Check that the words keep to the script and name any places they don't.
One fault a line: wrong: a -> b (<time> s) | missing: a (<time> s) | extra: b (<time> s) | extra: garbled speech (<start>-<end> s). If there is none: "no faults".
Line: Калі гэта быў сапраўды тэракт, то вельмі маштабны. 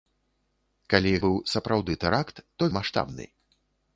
missing: гэта (1.1 s)
missing: вельмі (2.7 s)